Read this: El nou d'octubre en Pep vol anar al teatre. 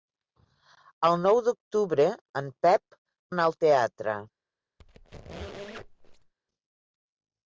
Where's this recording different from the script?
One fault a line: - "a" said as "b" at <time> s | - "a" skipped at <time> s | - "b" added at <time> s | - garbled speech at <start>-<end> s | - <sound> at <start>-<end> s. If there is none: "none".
- "vol" skipped at 3.0 s
- squeak at 4.8-6.3 s